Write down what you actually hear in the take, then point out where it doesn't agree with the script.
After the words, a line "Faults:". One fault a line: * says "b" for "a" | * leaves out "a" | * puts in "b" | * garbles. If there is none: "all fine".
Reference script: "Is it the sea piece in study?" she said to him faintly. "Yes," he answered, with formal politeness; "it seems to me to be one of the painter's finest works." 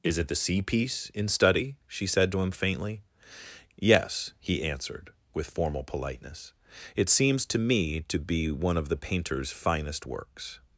"Is it the sea piece in study?" she said to him faintly. "Yes," he answered, with formal politeness; "it seems to me to be one of the painter's finest works."
Faults:
all fine